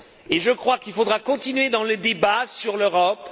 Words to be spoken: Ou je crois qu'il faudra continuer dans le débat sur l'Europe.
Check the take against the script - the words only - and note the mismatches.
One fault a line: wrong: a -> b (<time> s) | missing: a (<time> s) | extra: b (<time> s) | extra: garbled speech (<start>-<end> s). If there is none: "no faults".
wrong: Ou -> Et (0.3 s)